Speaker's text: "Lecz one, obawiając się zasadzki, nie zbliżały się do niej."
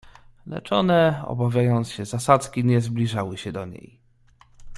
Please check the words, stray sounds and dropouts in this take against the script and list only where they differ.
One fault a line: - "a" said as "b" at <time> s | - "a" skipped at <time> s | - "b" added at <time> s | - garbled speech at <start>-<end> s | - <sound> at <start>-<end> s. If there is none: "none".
none